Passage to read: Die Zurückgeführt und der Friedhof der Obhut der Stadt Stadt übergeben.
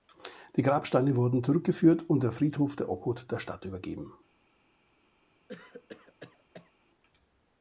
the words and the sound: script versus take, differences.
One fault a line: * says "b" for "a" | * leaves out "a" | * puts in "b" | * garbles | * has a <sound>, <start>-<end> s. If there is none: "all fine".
* puts in "Grabsteine wurden"
* leaves out "Stadt"
* has a cough, 5.5-6.7 s